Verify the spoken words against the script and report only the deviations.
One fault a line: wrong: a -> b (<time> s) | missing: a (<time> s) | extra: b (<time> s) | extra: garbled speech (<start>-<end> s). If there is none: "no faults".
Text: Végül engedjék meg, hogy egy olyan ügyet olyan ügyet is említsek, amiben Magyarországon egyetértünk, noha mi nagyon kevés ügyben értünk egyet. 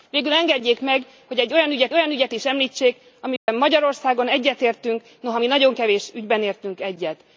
no faults